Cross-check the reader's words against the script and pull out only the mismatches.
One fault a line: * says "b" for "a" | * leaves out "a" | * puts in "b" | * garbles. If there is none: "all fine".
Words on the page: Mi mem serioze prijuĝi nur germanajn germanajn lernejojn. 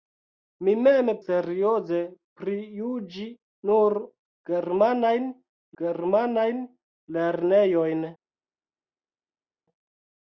all fine